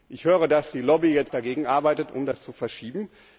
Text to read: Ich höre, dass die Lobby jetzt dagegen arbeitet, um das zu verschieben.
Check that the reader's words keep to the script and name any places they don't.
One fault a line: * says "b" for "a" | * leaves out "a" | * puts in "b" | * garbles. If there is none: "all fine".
all fine